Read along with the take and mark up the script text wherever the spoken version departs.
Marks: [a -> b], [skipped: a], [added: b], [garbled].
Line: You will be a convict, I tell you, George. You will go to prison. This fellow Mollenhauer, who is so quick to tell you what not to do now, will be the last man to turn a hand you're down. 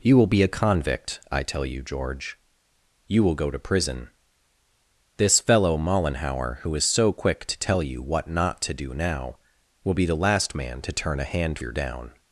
You will be a convict, I tell you, George. You will go to prison. This fellow Mollenhauer, who is so quick to tell you what not to do now, will be the last man to turn a hand you're down.